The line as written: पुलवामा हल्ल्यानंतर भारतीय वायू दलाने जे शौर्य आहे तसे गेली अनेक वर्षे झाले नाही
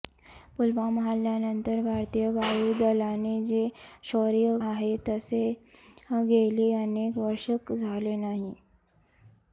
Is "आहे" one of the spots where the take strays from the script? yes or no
no